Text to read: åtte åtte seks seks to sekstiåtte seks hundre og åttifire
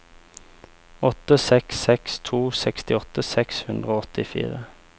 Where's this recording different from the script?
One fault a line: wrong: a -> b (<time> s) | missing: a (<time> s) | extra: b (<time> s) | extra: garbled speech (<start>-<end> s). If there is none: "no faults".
missing: åtte (1.4 s)